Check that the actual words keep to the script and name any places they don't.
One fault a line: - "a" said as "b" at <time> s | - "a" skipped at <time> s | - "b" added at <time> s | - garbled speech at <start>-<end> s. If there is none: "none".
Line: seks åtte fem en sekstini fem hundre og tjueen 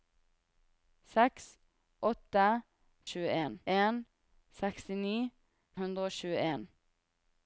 - "fem" said as "tjueen" at 3.1 s
- "fem" skipped at 5.1 s